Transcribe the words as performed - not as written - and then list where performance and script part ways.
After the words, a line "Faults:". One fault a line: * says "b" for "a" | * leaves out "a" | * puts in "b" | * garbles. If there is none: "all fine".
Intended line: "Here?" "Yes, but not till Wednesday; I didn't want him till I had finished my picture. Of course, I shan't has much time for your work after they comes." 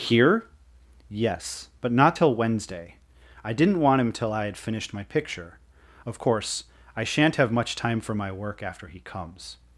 "Here?" "Yes, but not till Wednesday; I didn't want him till I had finished my picture. Of course, I shan't have much time for my work after he comes."
Faults:
* says "have" for "has"
* says "my" for "your"
* says "he" for "they"